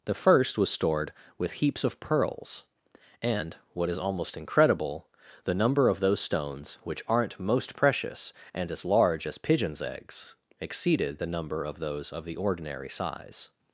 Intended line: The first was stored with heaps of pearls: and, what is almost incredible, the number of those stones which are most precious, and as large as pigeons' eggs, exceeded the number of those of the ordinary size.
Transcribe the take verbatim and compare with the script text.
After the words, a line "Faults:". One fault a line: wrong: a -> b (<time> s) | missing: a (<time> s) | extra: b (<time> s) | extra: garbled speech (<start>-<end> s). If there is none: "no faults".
The first was stored with heaps of pearls: and, what is almost incredible, the number of those stones which aren't most precious, and as large as pigeons' eggs, exceeded the number of those of the ordinary size.
Faults:
wrong: are -> aren't (7.1 s)